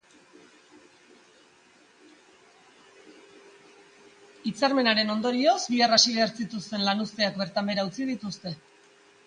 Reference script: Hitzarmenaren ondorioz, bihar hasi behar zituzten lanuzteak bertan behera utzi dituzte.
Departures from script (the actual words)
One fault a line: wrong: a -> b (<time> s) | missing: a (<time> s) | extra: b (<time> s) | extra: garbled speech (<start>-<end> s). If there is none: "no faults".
no faults